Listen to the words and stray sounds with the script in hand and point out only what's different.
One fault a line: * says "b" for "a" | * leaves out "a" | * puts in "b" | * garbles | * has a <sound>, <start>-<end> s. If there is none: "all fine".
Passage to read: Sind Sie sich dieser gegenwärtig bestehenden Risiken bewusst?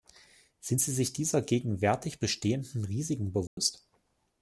* has a dropout, 3.5-3.6 s